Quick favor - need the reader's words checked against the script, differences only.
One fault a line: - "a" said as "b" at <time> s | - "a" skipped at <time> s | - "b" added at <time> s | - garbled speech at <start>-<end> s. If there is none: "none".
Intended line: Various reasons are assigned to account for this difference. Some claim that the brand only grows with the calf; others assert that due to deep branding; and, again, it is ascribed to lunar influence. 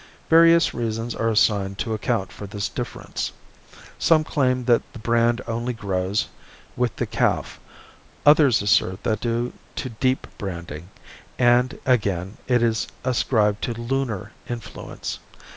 none